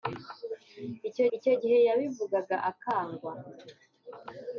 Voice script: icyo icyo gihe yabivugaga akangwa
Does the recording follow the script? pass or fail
pass